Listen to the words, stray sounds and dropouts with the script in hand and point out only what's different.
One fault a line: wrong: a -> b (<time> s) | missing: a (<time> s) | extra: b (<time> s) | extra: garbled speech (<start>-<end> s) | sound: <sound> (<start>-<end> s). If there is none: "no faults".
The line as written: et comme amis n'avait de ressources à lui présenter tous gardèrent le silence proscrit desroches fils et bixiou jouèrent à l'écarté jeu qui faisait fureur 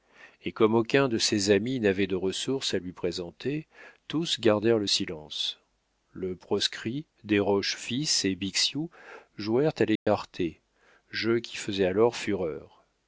extra: aucun de ses (0.7 s)
extra: le (6.1 s)
sound: dropout (10.0-10.1 s)
extra: alors (11.8 s)